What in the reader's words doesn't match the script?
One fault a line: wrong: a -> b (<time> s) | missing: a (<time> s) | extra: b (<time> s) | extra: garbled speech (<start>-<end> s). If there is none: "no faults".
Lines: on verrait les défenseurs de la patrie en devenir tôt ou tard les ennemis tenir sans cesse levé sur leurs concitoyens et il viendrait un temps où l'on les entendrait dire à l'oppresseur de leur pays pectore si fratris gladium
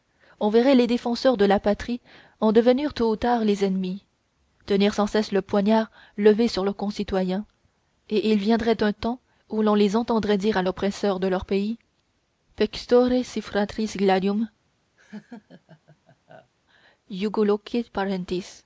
extra: le poignard (5.3 s)